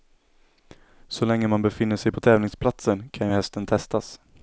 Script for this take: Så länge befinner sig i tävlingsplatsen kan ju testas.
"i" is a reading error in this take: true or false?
true